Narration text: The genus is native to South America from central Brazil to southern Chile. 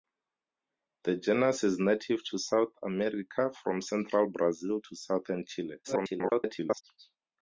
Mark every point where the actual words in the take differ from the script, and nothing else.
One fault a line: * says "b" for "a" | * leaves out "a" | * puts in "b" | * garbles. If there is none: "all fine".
* garbles